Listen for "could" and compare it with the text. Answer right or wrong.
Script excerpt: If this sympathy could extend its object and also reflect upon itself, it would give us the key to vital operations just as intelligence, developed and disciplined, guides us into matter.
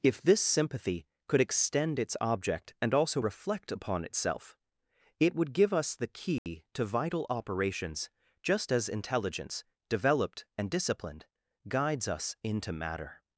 right